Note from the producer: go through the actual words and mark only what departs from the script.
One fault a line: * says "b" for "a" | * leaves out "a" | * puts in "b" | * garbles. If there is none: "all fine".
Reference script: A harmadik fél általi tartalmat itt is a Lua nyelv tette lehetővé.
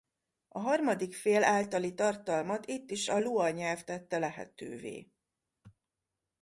all fine